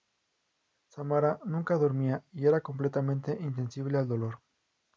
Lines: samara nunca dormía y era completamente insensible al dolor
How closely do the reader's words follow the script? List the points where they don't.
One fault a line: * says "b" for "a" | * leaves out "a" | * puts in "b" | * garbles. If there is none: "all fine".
all fine